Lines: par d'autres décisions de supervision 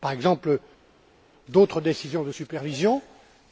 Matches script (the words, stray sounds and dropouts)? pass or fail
fail